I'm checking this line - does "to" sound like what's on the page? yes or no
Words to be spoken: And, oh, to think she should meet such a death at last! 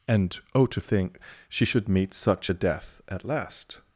yes